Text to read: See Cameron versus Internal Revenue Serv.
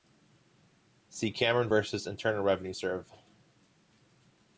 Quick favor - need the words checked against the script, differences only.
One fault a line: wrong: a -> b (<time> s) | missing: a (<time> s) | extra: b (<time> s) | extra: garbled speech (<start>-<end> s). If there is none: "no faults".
no faults